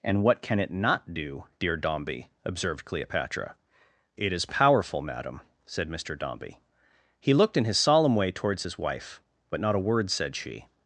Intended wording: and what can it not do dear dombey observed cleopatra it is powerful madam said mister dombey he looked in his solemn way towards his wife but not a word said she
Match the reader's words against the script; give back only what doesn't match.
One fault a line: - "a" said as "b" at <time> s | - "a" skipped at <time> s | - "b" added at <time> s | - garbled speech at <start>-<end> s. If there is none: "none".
none